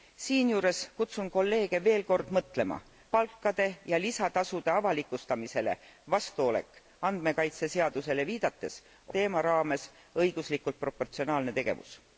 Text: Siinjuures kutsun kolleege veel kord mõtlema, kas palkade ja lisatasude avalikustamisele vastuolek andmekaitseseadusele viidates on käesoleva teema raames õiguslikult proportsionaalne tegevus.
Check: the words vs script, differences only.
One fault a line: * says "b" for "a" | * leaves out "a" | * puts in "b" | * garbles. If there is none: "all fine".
* leaves out "kas"
* leaves out "on käesoleva"